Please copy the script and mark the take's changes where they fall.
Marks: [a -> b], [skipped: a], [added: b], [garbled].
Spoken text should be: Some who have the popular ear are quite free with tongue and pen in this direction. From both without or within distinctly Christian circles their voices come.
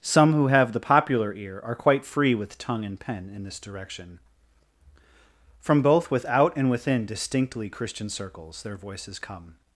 Some who have the popular ear are quite free with tongue and pen in this direction. From both without [or -> and] within distinctly Christian circles their voices come.